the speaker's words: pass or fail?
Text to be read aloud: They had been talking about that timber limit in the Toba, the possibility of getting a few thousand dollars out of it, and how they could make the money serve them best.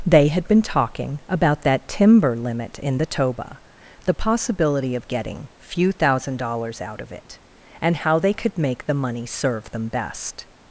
fail